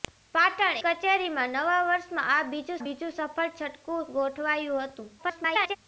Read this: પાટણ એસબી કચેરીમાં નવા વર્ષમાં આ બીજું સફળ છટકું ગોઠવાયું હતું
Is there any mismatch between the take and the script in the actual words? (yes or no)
yes